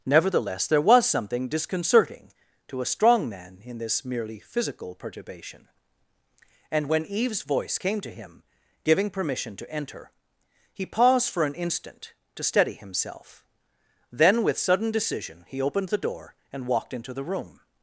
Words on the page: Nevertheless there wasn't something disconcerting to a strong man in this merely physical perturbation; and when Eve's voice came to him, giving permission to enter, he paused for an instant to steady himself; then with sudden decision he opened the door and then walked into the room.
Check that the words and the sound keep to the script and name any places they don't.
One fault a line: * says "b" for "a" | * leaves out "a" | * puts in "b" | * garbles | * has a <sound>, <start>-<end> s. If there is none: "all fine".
* says "was" for "wasn't"
* leaves out "then"